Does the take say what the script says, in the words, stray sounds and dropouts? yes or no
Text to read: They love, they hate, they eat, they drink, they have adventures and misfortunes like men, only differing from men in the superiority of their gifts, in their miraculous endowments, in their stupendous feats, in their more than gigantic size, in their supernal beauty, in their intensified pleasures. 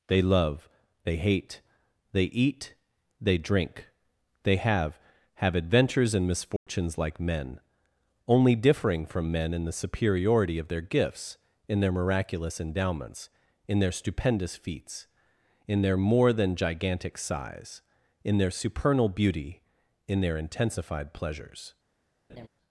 no